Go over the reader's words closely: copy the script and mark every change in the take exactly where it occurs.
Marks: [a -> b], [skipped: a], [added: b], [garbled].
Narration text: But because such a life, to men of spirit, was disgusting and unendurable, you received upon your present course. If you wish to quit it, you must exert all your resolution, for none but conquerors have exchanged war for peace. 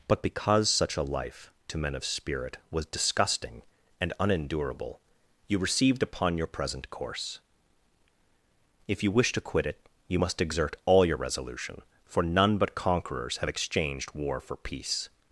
But because such a life, to men of spirit, was disgusting and unendurable, you received upon your present course. If you wish to quit it, you must exert all your resolution, for none but conquerors have exchanged war for peace.